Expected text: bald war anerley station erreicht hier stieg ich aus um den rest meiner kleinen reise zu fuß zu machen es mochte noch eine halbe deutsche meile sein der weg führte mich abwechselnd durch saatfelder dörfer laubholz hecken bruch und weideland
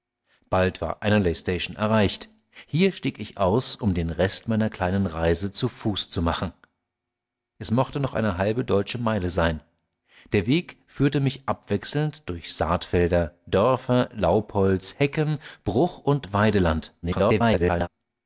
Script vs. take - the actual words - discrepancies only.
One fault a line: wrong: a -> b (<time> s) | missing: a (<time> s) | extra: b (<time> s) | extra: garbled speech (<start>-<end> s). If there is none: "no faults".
extra: garbled speech (17.0-17.9 s)